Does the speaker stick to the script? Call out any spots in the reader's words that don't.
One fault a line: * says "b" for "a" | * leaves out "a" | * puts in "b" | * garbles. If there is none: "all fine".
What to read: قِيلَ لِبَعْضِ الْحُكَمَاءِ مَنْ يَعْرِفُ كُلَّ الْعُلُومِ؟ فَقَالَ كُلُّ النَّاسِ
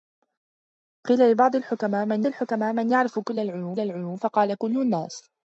* puts in "الْحُكَمَاءِ مَنْ"
* puts in "الْعُلُومِ"